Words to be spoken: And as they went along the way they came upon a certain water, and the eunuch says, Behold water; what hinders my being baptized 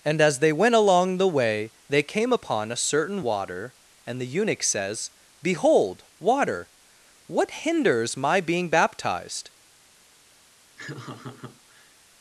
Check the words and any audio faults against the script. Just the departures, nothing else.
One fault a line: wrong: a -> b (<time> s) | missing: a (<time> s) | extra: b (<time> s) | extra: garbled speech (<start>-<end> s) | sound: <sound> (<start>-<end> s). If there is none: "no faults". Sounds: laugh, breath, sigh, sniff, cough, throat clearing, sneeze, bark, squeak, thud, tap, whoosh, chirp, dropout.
sound: laugh (10.8-12.0 s)